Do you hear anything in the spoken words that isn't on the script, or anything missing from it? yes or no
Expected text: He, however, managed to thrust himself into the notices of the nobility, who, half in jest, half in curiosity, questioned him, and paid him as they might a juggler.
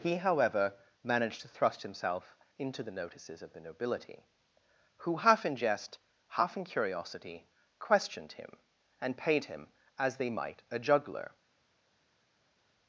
no